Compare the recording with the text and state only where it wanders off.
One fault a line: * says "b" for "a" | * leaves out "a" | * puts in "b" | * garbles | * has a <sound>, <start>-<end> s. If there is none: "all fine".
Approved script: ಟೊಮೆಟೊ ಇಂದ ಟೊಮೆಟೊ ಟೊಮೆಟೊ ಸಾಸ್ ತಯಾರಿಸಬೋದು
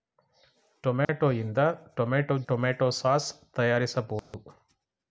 * has a dropout, 1.0-1.1 s
* has a dropout, 4.2-4.3 s